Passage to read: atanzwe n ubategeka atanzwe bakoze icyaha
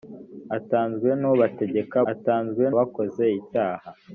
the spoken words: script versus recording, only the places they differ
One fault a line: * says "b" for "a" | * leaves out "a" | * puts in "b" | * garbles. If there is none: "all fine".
all fine